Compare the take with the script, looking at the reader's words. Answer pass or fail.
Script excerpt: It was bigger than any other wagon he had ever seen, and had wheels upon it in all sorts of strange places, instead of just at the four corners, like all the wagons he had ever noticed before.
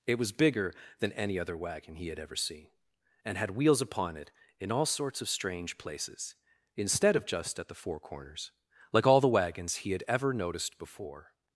pass